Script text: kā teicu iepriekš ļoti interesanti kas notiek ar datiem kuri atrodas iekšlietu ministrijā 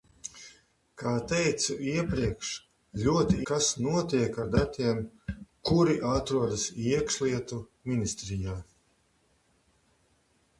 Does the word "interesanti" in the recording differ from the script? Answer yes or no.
yes